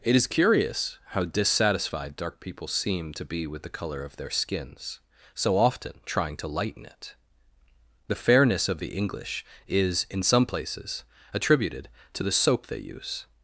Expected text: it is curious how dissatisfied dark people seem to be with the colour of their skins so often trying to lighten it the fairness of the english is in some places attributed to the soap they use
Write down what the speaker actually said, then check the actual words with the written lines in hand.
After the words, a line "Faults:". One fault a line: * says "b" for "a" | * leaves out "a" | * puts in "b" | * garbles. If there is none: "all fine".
it is curious how dissatisfied dark people seem to be with the colour of their skins so often trying to lighten it the fairness of the english is in some places attributed to the soap they use
Faults:
all fine